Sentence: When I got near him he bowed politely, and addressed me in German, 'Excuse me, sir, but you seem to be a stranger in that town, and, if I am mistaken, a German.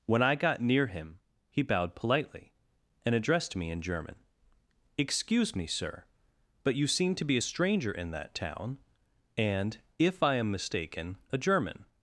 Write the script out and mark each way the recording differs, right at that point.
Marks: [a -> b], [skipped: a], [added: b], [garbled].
When I got near him he bowed politely, and addressed me in German, 'Excuse me, sir, but you seem to be a stranger in that town, and, if I am mistaken, a German.